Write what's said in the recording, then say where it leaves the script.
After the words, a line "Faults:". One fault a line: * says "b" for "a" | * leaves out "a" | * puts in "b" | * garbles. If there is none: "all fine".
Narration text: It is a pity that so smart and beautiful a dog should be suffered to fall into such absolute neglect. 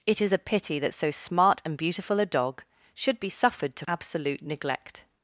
It is a pity that so smart and beautiful a dog should be suffered to absolute neglect.
Faults:
* leaves out "fall into such"